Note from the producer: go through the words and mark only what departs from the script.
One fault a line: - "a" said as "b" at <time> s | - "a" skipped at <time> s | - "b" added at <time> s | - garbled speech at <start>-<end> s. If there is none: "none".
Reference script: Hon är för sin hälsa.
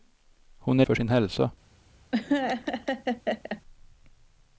none